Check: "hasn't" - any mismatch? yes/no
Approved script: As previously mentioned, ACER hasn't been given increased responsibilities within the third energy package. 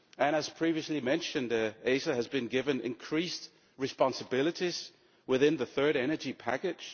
yes